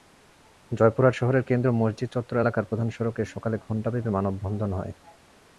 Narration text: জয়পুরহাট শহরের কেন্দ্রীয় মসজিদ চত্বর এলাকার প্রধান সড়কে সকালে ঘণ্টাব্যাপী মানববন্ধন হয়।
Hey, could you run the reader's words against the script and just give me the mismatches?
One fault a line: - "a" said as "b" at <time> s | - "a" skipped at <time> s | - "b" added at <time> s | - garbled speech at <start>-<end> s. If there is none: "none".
none